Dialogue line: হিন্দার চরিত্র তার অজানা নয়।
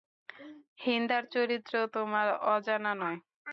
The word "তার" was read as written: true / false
false